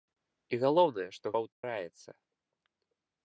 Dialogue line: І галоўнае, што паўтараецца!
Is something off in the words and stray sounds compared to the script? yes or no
yes